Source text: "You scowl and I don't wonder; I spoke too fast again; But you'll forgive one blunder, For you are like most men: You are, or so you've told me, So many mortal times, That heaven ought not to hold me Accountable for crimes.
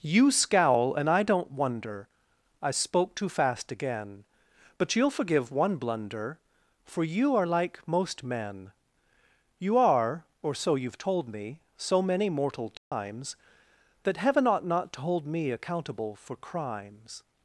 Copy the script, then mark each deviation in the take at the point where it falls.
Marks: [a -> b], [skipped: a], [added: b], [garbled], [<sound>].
"You scowl and I don't wonder; I spoke too fast again; But you'll forgive one blunder, For you are like most men: You are, or so you've told me, So many mortal times, [dropout] That heaven ought not to hold me Accountable for crimes.